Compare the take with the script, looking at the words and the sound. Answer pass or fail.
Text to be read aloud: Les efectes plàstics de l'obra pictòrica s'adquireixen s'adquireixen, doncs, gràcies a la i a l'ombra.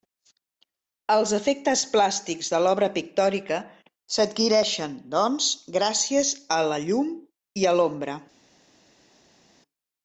fail